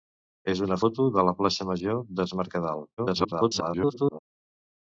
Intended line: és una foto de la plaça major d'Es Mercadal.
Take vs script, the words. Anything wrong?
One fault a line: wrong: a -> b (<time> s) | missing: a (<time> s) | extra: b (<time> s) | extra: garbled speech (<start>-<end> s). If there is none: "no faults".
extra: garbled speech (3.0-4.2 s)